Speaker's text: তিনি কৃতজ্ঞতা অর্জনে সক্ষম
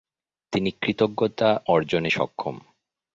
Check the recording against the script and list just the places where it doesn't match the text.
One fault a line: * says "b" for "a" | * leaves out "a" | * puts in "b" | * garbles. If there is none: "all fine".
all fine